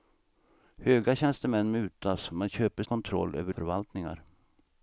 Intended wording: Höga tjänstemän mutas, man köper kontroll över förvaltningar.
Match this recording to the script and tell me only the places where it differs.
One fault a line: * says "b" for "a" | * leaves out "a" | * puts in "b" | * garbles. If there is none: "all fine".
all fine